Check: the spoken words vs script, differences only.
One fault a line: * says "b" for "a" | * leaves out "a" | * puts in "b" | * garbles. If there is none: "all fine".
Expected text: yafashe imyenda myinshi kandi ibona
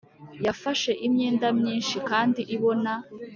all fine